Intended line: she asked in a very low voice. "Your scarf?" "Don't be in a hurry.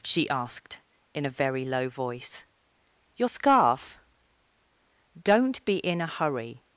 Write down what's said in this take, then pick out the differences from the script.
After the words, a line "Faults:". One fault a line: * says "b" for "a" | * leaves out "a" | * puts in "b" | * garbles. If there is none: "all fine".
she asked in a very low voice. "Your scarf?" "Don't be in a hurry.
Faults:
all fine